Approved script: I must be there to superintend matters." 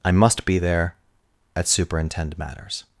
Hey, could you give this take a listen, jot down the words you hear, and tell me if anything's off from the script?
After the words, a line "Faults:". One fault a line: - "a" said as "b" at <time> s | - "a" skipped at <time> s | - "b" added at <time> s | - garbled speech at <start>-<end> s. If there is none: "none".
I must be there at superintend matters."
Faults:
- "to" said as "at" at 1.6 s